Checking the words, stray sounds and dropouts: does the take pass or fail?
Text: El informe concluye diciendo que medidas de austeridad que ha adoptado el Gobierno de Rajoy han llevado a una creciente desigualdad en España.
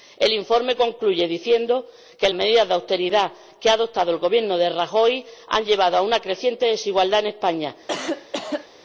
fail